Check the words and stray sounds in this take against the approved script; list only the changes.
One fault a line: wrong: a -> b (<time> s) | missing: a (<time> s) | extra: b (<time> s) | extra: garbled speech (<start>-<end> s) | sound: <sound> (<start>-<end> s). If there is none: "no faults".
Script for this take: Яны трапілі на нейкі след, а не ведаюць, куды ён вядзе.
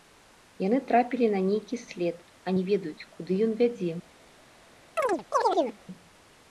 sound: chirp (5.0-5.8 s)